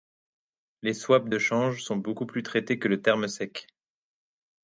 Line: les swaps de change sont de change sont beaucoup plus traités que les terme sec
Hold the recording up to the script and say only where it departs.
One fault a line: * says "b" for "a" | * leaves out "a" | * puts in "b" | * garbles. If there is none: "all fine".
* leaves out "de change sont"
* says "le" for "les"